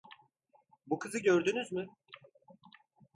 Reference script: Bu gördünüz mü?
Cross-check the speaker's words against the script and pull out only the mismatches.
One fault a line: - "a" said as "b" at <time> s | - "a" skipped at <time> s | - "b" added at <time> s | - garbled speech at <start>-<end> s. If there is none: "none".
- "kızı" added at 1.0 s